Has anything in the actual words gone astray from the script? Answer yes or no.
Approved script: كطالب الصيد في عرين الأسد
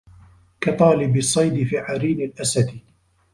no